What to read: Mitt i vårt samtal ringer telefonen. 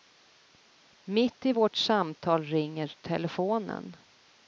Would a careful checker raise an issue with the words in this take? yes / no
no